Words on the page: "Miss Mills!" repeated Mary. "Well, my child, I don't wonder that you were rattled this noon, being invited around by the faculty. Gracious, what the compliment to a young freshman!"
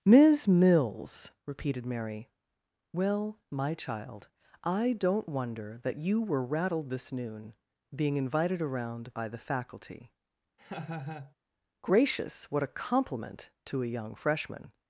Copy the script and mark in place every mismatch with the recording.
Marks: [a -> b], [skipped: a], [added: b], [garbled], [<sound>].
"Miss Mills!" repeated Mary. "Well, my child, I don't wonder that you were rattled this noon, being invited around by the faculty. [laugh] Gracious, what [the -> a] compliment to a young freshman!"